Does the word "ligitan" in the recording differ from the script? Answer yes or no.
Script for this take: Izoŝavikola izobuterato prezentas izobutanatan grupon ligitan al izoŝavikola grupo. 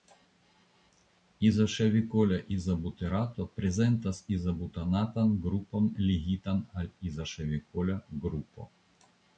no